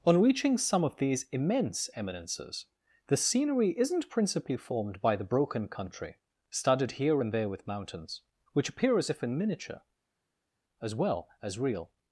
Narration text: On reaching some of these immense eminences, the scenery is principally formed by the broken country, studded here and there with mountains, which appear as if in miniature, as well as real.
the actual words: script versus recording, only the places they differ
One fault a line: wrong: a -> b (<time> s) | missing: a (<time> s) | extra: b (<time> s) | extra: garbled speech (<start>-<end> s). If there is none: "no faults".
wrong: is -> isn't (3.8 s)